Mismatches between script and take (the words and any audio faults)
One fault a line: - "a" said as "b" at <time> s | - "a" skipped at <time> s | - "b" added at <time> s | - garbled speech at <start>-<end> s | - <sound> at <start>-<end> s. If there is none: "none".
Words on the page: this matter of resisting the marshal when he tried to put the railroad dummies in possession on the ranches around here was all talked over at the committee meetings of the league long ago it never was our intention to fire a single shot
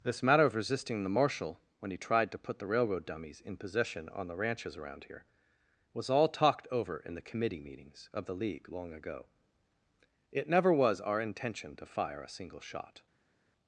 - "at" said as "in" at 7.0 s